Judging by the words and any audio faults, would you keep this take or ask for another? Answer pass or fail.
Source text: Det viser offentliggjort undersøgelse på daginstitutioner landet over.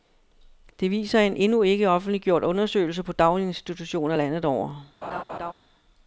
fail